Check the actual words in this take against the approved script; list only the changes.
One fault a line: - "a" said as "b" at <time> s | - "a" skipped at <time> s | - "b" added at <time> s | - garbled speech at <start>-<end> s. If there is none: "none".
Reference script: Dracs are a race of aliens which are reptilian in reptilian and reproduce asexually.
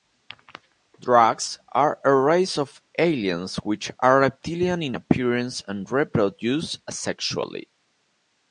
- "reptilian" said as "appearance" at 4.9 s